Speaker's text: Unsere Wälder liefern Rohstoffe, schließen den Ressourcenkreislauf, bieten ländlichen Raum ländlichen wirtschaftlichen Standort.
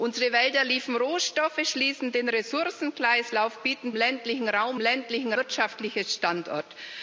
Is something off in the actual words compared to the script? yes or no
no